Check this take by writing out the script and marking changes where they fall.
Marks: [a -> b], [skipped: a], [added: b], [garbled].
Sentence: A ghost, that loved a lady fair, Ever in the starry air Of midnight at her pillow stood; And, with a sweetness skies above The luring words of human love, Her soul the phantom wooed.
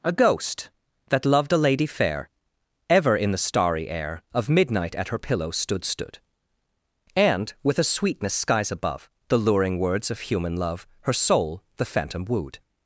A ghost, that loved a lady fair, Ever in the starry air Of midnight at her pillow stood; [added: stood] And, with a sweetness skies above The luring words of human love, Her soul the phantom wooed.